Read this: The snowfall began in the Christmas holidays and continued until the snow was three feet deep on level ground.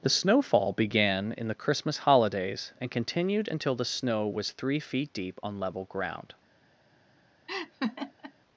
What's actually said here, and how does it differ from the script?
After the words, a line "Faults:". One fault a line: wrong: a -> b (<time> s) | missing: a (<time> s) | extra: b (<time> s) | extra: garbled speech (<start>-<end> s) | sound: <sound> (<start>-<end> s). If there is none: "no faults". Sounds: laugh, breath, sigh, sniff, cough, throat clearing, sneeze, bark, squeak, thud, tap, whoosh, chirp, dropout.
The snowfall began in the Christmas holidays and continued until the snow was three feet deep on level ground.
Faults:
sound: laugh (7.5-8.3 s)